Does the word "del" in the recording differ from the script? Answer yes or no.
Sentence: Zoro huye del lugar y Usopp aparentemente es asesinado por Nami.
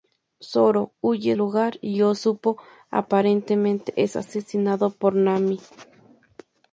yes